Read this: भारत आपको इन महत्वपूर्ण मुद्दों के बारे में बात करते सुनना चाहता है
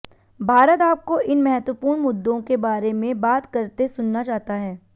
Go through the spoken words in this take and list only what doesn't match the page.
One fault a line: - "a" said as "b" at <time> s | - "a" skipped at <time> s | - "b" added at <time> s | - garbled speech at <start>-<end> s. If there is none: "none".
none